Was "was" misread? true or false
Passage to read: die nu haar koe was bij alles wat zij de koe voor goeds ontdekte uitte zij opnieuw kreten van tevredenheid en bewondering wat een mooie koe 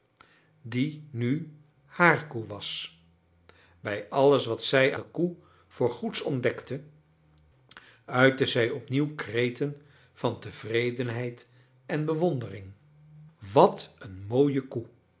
false